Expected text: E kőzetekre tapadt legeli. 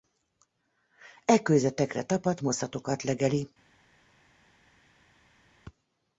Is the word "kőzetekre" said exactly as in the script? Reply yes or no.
yes